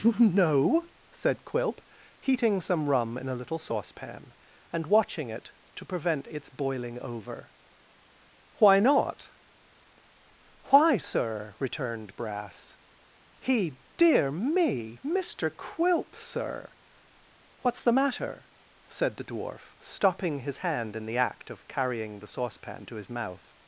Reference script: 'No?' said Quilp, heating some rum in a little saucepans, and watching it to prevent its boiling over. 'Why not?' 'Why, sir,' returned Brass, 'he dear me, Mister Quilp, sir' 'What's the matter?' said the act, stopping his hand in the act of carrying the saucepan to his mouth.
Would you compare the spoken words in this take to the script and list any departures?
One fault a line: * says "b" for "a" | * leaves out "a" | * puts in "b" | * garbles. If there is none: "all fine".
* says "saucepan" for "saucepans"
* says "dwarf" for "act"